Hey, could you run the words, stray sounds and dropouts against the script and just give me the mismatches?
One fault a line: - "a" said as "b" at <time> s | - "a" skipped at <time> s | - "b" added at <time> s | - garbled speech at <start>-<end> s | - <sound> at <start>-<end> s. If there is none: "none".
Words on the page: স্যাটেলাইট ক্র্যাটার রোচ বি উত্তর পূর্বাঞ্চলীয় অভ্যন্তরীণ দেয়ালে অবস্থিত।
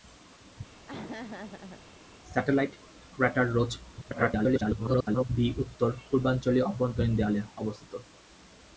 - laugh at 0.8-1.8 s
- garbled speech at 4.0-5.3 s